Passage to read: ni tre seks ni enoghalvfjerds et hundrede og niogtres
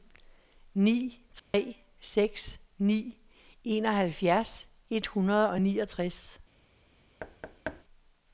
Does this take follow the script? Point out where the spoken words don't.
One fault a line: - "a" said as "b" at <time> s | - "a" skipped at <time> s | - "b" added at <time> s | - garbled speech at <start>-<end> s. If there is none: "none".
none